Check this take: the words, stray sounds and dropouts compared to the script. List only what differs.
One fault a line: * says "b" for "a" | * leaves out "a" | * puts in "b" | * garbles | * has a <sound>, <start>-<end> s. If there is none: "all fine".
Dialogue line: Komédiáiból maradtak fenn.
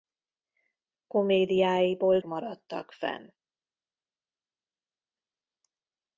all fine